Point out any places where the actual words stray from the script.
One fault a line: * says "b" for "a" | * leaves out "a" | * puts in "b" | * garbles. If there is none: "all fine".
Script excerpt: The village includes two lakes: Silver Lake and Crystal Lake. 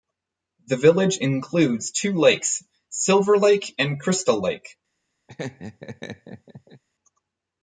all fine